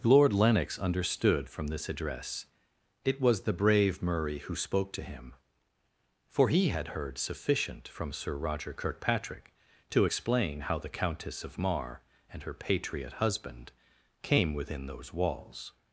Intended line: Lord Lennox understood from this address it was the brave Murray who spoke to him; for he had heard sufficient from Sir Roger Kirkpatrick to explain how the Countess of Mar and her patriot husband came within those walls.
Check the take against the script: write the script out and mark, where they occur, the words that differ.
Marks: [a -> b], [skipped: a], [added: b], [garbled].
Lord Lennox understood from this address it was the brave Murray who spoke to him; for he had heard sufficient from Sir Roger Kirkpatrick to explain how the Countess of Mar and her patriot husband came within those walls.